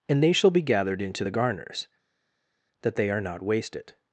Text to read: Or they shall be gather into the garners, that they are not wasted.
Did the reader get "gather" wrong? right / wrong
wrong